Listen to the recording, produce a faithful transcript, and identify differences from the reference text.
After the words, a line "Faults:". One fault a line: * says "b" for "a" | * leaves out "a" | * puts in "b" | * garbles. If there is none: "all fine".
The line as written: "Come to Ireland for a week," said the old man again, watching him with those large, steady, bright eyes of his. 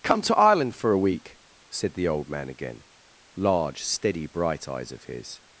"Come to Ireland for a week," said the old man again, large, steady, bright eyes of his.
Faults:
* leaves out "watching him with those"